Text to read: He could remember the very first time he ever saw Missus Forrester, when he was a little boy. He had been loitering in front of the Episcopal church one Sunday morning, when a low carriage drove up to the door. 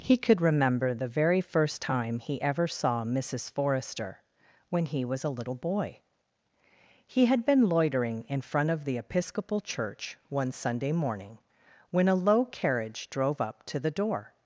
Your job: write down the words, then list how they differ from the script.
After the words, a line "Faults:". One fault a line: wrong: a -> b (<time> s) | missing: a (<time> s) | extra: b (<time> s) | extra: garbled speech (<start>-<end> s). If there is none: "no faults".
He could remember the very first time he ever saw Missus Forrester, when he was a little boy. He had been loitering in front of the Episcopal church one Sunday morning, when a low carriage drove up to the door.
Faults:
no faults